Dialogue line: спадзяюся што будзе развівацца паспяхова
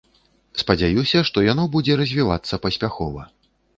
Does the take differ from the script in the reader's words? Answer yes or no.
yes